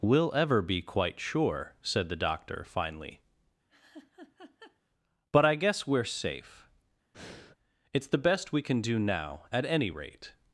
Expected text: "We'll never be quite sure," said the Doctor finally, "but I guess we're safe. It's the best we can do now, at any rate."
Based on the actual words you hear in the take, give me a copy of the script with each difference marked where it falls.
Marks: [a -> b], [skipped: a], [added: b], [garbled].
"We'll [never -> ever] be quite sure," said the Doctor finally, "but I guess we're safe. It's the best we can do now, at any rate."